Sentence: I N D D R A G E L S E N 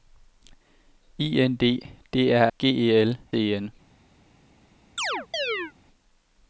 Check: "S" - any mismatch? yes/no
yes